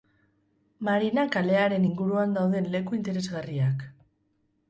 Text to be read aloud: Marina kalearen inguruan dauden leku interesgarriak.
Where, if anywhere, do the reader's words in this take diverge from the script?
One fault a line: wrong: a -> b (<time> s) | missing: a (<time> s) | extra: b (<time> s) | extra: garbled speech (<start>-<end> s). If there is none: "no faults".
no faults